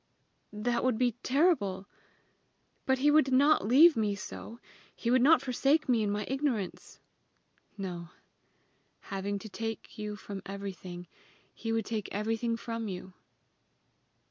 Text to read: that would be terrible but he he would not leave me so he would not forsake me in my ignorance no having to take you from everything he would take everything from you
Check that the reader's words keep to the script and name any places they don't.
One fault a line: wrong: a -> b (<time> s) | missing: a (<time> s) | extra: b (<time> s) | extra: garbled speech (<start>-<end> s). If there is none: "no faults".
missing: he (3.1 s)